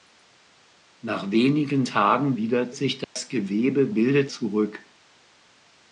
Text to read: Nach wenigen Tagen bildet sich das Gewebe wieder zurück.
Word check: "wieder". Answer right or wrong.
wrong